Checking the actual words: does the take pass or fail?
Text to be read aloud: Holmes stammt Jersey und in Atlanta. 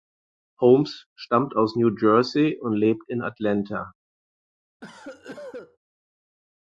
fail